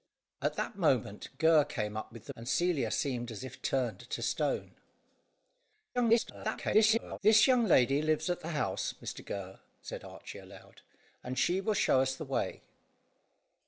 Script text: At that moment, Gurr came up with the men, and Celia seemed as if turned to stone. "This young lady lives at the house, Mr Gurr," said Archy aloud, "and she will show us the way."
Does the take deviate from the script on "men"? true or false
true